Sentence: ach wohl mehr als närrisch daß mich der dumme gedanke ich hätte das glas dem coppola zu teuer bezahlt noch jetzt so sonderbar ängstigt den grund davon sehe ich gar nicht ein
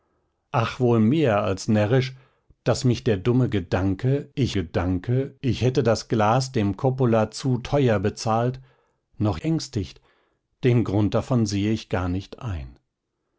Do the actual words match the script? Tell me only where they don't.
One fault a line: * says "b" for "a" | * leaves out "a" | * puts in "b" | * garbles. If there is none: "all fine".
* puts in "gedanke ich"
* leaves out "jetzt so sonderbar"